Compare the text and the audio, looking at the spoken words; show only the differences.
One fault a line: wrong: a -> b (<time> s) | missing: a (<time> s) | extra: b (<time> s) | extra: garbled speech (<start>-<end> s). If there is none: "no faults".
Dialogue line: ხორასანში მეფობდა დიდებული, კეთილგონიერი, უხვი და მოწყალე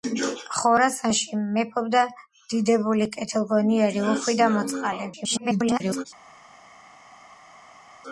extra: garbled speech (5.1-6.0 s)